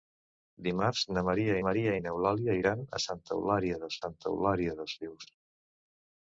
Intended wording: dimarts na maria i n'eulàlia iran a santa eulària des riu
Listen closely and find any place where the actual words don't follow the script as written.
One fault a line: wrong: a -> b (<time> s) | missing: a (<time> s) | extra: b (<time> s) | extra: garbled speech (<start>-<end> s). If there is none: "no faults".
extra: maria (1.7 s)
extra: santa eulària des (4.0 s)